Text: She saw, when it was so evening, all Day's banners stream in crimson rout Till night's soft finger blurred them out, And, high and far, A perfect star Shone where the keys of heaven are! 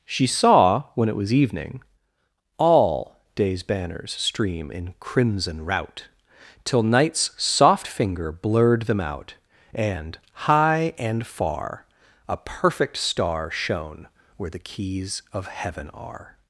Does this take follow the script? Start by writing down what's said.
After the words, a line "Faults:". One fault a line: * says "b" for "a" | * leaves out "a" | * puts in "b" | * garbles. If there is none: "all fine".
She saw, when it was evening, all Day's banners stream in crimson rout Till night's soft finger blurred them out, And, high and far, A perfect star Shone where the keys of heaven are!
Faults:
* leaves out "so"